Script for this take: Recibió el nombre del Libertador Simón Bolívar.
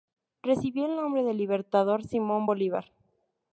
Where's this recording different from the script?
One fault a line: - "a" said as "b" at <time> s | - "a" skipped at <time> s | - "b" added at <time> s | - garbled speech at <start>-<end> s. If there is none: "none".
none